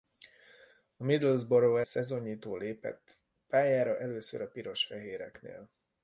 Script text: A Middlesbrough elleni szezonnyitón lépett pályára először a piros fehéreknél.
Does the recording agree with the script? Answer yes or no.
no